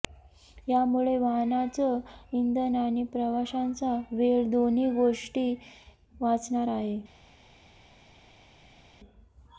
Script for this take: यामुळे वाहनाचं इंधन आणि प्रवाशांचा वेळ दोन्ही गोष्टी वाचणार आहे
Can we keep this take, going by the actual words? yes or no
yes